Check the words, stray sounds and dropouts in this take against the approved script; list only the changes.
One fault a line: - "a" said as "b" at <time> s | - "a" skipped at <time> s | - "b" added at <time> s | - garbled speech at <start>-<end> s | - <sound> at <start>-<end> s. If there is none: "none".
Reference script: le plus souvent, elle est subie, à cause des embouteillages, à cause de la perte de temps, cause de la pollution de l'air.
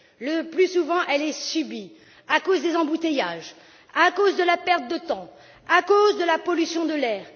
- "à" added at 5.7 s